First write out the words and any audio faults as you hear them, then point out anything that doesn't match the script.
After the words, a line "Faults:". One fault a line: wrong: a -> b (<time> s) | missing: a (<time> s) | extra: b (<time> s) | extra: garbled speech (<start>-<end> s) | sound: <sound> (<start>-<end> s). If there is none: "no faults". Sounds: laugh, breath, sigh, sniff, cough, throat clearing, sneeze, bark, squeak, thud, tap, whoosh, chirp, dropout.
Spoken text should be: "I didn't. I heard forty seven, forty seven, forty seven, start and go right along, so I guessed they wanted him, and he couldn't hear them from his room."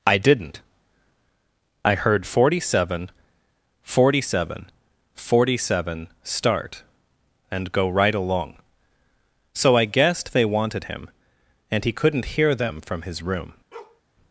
"I didn't. I heard forty seven, forty seven, forty seven, start and go right along, so I guessed they wanted him, and he couldn't hear them from his room."
Faults:
sound: bark (13.7-14.0 s)